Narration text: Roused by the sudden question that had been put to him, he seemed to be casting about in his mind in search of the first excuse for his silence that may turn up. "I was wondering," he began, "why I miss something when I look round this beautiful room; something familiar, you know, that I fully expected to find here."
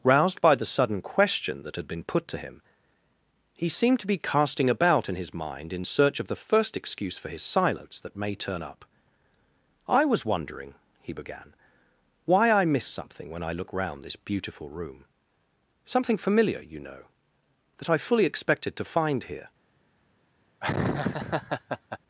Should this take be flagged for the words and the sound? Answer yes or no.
yes